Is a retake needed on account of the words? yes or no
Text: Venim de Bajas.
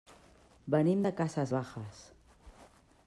yes